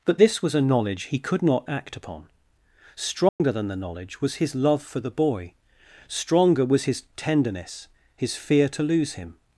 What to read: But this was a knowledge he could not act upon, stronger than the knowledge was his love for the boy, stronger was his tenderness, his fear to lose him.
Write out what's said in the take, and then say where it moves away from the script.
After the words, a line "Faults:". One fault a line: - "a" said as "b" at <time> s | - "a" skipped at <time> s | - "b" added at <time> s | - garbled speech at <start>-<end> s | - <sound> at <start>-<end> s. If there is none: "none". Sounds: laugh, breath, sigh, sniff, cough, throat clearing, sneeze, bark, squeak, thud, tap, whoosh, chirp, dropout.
But this was a knowledge he could not act upon, stronger than the knowledge was his love for the boy, stronger was his tenderness, his fear to lose him.
Faults:
- dropout at 3.3-3.4 s